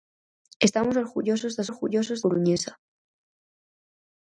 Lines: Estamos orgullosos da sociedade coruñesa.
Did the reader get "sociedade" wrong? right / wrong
wrong